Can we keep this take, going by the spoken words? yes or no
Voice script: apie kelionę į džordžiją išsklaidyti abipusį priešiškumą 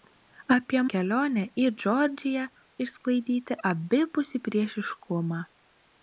yes